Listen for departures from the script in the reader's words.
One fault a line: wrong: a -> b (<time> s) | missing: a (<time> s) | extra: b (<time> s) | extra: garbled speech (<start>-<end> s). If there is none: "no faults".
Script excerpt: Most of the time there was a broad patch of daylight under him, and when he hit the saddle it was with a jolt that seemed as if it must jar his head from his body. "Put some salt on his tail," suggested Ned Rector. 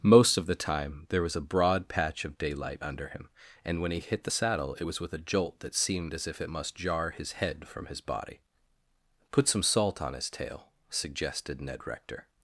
no faults